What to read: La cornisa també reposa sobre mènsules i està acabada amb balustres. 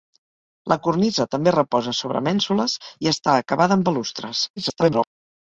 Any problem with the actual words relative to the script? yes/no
yes